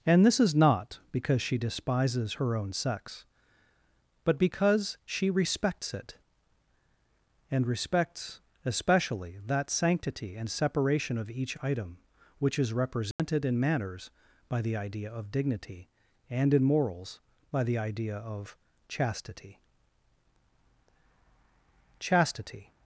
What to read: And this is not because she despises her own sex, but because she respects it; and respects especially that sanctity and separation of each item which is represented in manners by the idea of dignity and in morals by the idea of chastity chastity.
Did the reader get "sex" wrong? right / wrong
right